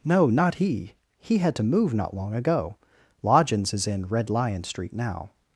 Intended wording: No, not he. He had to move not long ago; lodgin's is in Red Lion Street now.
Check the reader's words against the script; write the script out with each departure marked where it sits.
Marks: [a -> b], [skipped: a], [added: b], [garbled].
No, not he. He had to move not long ago; lodgin's is in Red Lion Street now.